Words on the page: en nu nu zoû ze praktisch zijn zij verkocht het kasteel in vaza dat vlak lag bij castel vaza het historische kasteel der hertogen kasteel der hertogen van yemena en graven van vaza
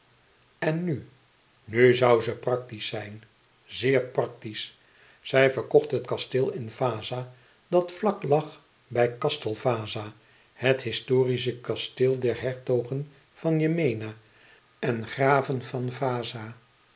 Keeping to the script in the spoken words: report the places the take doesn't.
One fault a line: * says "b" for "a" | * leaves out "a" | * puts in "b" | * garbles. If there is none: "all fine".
* puts in "zeer praktisch"
* leaves out "kasteel der hertogen"